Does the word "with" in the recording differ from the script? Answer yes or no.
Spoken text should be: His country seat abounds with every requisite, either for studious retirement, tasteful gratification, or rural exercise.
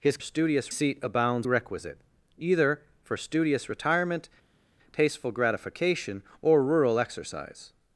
yes